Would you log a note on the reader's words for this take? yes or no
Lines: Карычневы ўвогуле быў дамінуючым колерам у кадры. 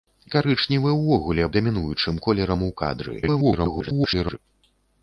yes